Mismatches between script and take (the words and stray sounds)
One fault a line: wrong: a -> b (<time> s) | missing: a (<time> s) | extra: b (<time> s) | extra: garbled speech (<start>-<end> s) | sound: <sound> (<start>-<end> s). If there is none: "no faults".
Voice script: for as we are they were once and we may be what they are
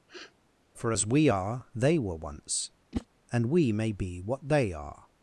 sound: sniff (0.1-0.3 s)
sound: whoosh (2.9-3.1 s)